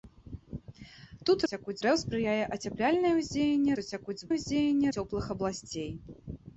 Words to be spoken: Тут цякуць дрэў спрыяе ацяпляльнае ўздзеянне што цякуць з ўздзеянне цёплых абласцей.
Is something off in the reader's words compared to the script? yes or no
no